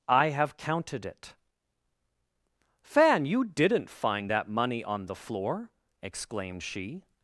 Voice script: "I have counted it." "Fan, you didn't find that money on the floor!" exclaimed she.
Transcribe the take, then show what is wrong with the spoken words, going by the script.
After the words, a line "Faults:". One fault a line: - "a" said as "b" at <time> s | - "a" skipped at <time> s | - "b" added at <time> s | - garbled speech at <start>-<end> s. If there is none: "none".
"I have counted it." "Fan, you didn't find that money on the floor!" exclaimed she.
Faults:
none